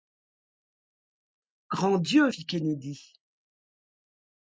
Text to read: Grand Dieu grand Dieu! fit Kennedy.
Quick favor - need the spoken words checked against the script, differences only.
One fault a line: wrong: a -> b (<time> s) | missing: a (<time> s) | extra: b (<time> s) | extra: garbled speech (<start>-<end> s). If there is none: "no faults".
missing: grand Dieu (2.3 s)